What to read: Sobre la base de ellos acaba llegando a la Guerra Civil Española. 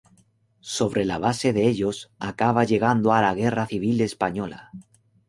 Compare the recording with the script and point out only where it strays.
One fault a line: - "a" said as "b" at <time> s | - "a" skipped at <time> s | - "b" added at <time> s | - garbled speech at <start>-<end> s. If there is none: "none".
none